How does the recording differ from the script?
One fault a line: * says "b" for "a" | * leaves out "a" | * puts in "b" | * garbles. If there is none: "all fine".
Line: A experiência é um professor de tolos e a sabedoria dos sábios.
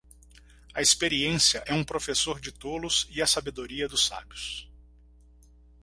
all fine